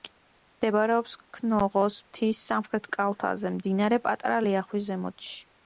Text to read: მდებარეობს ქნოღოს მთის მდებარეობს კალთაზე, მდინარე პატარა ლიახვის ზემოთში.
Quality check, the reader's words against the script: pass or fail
fail